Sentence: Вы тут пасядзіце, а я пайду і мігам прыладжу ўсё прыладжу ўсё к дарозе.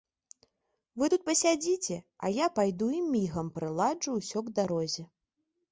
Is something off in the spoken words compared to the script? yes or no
yes